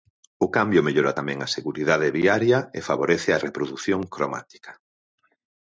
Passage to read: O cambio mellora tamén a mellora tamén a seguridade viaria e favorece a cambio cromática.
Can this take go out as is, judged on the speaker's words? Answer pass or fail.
fail